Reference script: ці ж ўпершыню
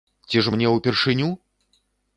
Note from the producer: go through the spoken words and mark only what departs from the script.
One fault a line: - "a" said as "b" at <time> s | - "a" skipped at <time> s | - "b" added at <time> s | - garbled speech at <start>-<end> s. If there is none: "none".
- "мне" added at 0.5 s